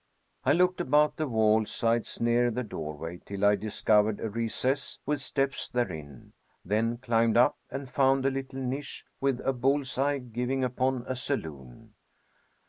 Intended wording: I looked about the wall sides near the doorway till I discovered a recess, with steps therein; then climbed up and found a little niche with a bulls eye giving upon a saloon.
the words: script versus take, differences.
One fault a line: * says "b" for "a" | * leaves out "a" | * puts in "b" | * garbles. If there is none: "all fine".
all fine